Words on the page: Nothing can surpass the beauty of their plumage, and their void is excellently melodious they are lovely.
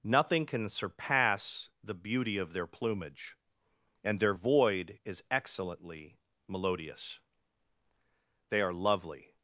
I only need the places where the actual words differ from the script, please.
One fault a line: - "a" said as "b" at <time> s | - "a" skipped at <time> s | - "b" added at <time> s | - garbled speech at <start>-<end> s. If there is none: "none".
none